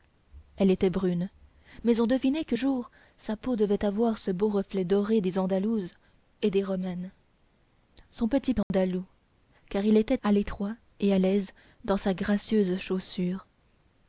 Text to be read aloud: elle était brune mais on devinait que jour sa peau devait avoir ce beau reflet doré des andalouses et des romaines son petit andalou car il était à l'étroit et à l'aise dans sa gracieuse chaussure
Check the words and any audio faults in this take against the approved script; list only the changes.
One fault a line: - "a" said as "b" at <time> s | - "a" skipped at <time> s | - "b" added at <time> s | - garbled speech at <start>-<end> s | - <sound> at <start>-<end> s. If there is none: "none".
- dropout at 8.6-8.7 s